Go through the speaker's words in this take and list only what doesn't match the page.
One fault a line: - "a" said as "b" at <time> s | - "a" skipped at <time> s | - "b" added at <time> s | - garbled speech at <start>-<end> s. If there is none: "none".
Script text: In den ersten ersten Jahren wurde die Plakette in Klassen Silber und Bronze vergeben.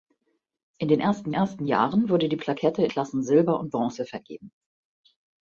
none